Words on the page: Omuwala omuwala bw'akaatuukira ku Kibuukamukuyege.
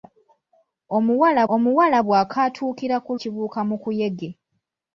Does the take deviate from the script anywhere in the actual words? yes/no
no